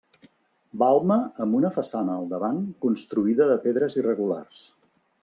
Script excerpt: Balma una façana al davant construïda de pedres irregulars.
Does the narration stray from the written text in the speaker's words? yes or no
yes